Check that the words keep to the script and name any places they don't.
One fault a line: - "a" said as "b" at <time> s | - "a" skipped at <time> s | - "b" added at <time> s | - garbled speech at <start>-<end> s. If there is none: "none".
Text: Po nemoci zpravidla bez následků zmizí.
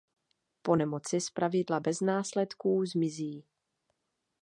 none